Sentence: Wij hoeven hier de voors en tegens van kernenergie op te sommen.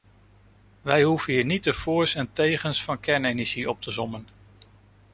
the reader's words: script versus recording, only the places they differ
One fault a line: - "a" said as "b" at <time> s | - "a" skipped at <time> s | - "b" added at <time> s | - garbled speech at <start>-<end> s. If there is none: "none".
- "niet" added at 1.4 s